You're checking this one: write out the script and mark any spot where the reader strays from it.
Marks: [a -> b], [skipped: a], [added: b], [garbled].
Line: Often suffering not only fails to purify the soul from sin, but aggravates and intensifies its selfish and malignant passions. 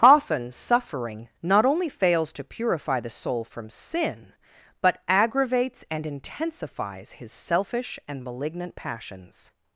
Often suffering not only fails to purify the soul from sin, but aggravates and intensifies [its -> his] selfish and malignant passions.